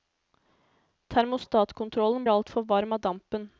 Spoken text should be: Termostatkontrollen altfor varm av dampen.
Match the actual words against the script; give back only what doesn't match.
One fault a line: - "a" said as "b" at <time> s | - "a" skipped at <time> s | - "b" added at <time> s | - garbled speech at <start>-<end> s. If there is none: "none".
none